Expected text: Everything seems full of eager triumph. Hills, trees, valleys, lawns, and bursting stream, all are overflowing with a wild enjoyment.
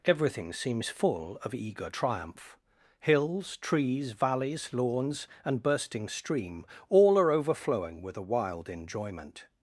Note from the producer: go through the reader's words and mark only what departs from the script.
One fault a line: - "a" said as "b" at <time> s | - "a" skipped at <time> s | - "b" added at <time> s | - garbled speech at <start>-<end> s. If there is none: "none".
none